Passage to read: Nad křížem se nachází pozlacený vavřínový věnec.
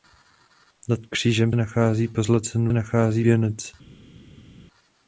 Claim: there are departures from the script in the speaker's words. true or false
true